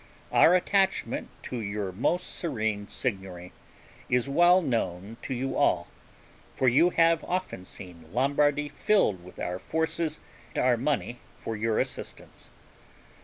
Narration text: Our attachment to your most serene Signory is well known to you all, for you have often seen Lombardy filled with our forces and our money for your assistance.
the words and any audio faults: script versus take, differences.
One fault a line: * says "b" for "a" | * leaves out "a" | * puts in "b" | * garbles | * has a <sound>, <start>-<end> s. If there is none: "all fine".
* leaves out "and"